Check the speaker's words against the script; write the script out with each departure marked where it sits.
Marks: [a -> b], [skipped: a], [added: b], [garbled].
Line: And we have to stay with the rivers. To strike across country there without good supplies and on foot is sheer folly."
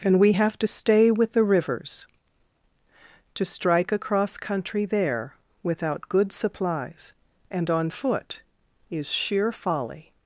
And we have to stay with the rivers. To strike across country there without good supplies and on foot is sheer folly."